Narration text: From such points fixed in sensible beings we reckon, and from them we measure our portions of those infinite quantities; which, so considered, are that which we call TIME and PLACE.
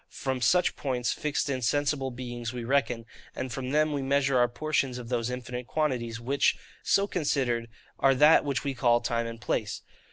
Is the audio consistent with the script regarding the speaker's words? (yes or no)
yes